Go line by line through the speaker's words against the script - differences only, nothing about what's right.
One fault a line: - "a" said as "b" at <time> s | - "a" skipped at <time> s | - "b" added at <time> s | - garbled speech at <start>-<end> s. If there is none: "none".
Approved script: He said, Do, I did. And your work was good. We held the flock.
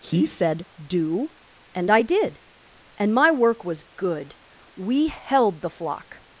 - "and" added at 1.8 s
- "your" said as "my" at 3.1 s